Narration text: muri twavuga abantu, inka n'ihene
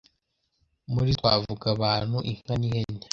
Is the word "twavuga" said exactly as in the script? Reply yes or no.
yes